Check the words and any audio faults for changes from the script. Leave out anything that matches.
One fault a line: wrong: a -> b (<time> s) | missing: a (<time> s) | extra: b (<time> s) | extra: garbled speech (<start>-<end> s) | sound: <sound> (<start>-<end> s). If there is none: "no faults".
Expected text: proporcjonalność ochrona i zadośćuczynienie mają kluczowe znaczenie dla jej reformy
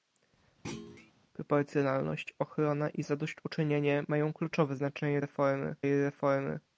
sound: thud (0.6-1.1 s)
wrong: dla -> reformy (5.2 s)